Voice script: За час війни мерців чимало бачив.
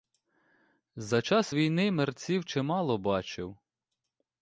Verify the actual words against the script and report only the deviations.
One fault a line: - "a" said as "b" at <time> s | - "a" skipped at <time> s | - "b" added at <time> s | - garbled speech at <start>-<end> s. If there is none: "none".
none